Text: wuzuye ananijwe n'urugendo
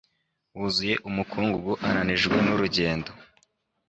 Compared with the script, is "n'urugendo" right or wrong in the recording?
right